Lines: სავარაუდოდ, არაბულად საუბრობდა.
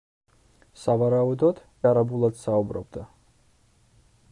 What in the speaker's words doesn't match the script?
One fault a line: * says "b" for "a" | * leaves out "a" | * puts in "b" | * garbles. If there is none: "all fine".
all fine